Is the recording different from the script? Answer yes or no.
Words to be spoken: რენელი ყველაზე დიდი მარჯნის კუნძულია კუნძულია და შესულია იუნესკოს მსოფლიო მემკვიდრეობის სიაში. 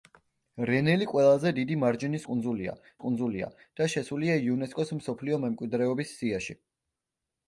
no